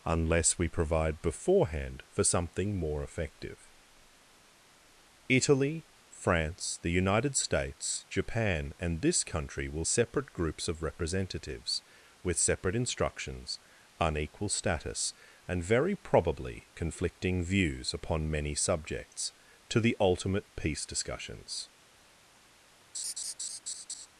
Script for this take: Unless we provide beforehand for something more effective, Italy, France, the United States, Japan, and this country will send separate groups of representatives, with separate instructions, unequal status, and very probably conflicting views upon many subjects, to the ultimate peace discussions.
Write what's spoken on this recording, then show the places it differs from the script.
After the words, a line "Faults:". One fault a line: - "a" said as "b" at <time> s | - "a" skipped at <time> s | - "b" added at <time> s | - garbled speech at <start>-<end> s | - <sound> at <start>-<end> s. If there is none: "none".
Unless we provide beforehand for something more effective, Italy, France, the United States, Japan, and this country will separate groups of representatives, with separate instructions, unequal status, and very probably conflicting views upon many subjects, to the ultimate peace discussions.
Faults:
- "send" skipped at 9.8 s
- laugh at 22.9-24.1 s